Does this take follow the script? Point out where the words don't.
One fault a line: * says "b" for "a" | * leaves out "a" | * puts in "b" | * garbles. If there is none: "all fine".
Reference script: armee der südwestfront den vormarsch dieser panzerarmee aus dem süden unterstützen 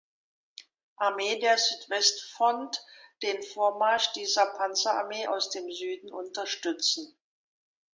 all fine